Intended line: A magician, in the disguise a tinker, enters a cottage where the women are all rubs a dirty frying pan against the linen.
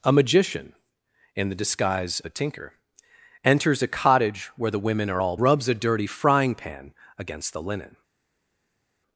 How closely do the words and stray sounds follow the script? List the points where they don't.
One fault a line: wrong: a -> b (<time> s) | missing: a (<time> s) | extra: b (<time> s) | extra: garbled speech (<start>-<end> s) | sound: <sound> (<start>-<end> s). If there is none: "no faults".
no faults